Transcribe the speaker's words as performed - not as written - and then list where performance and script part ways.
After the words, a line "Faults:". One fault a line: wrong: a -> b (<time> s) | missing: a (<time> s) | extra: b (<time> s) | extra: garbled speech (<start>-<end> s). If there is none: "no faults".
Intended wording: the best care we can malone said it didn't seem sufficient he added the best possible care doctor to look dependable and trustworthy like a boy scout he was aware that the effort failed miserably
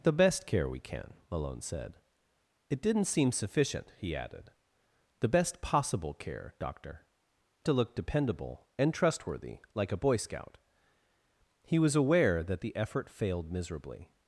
the best care we can malone said it didn't seem sufficient he added the best possible care doctor to look dependable and trustworthy like a boy scout he was aware that the effort failed miserably
Faults:
no faults